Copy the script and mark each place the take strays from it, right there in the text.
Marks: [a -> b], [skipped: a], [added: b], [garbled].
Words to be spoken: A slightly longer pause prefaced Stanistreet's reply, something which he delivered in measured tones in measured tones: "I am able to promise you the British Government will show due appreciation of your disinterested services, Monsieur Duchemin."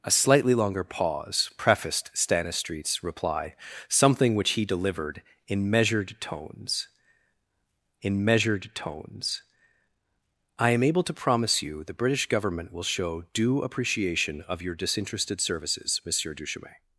A slightly longer pause prefaced Stanistreet's reply, something which he delivered in measured tones in measured tones: "I am able to promise you the British Government will show due appreciation of your disinterested services, Monsieur Duchemin."